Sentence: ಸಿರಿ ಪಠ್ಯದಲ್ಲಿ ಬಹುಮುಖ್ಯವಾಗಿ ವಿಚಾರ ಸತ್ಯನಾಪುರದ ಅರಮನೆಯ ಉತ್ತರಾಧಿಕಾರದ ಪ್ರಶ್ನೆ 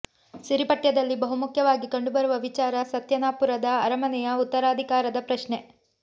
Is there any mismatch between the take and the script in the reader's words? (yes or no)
yes